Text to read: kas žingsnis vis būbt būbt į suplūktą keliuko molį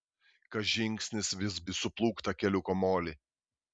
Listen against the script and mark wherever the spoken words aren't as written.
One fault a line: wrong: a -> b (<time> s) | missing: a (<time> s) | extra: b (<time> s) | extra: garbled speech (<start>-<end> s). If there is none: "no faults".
missing: būbt būbt (1.6 s)